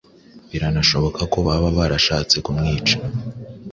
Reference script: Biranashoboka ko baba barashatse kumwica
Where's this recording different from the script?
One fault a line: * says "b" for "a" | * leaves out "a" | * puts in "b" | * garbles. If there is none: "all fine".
all fine